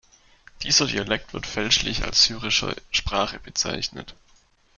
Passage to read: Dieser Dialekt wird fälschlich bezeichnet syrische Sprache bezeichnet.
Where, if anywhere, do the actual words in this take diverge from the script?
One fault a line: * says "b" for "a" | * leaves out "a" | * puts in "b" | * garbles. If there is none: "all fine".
* says "als" for "bezeichnet"